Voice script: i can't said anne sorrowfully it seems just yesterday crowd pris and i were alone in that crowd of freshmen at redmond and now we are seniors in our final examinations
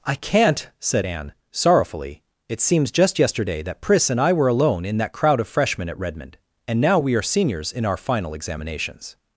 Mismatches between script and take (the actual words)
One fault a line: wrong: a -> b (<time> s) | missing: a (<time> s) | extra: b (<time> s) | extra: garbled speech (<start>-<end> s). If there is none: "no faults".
wrong: crowd -> that (3.6 s)